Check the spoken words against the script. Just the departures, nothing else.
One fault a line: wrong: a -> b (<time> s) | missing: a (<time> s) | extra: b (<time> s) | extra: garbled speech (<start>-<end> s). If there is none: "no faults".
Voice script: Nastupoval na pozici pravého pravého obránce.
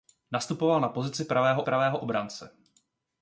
no faults